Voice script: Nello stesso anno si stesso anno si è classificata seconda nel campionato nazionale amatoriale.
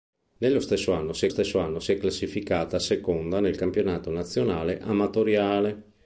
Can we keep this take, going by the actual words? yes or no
yes